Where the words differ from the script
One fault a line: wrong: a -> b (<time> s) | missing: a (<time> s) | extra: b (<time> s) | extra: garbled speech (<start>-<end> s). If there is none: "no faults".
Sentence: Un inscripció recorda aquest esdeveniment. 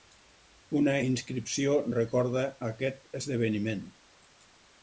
wrong: Un -> Una (0.8 s)